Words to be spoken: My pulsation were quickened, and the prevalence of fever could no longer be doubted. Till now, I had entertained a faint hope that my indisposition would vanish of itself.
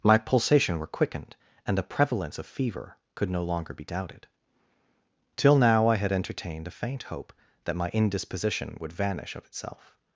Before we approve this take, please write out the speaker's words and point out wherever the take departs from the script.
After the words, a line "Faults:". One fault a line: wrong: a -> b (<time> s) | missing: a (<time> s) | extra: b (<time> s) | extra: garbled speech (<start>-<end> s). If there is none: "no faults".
My pulsation were quickened, and the prevalence of fever could no longer be doubted. Till now, I had entertained a faint hope that my indisposition would vanish of itself.
Faults:
no faults